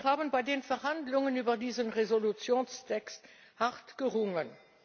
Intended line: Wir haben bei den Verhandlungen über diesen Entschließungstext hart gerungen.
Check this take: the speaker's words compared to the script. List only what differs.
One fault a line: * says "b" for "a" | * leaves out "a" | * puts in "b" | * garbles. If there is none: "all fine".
all fine